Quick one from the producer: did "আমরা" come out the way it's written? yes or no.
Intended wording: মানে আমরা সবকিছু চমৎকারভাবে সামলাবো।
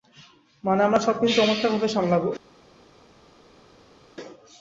yes